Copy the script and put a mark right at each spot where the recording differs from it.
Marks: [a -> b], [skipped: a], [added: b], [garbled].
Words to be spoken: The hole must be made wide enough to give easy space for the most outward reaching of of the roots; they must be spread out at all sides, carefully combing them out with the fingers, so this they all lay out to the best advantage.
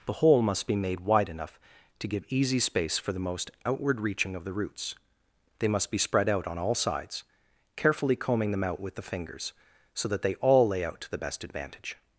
The hole must be made wide enough to give easy space for the most outward reaching of [skipped: of] the roots; they must be spread out [at -> on] all sides, carefully combing them out with the fingers, so [this -> that] they all lay out to the best advantage.